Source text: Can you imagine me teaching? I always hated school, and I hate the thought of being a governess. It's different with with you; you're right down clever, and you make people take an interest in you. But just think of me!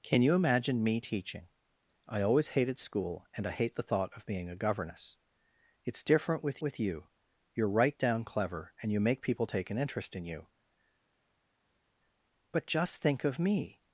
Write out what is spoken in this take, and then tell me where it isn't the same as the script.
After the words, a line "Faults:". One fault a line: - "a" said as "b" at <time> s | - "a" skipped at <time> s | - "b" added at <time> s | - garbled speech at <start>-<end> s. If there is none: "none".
Can you imagine me teaching? I always hated school, and I hate the thought of being a governess. It's different with with you; you're right down clever, and you make people take an interest in you. But just think of me!
Faults:
none